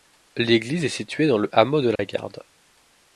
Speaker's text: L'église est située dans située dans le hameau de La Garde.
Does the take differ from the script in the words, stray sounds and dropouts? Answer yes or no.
yes